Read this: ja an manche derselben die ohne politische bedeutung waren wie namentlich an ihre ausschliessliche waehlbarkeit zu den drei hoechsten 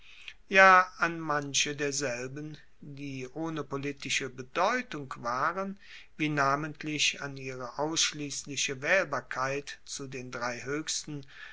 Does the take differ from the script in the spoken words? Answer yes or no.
no